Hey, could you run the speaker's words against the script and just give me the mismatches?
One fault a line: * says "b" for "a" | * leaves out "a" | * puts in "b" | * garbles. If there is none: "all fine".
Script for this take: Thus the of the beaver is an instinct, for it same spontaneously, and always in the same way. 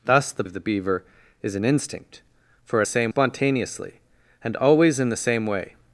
all fine